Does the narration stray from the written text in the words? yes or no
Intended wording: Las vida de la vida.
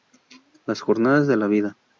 yes